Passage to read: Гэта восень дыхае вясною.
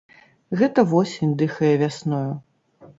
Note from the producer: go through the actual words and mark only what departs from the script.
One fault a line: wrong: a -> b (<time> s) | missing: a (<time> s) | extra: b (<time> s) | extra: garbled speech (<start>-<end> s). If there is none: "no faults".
no faults